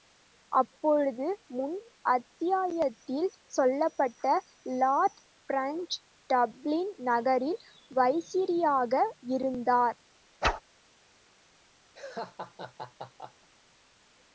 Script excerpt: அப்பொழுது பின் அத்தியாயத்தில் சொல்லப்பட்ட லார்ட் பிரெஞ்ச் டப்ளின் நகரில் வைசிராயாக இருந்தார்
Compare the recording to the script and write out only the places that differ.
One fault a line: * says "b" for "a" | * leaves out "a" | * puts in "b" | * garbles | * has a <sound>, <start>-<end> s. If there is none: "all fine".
* says "முன்" for "பின்"
* has a whoosh, 10.4-10.6 s
* has a laugh, 11.9-13.5 s